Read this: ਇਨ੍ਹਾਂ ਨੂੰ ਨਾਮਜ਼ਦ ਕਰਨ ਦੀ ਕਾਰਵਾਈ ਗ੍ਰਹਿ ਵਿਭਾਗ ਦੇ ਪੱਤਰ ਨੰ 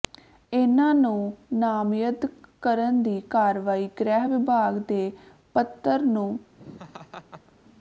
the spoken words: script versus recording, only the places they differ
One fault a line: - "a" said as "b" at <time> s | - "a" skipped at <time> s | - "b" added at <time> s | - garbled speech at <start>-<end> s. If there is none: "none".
none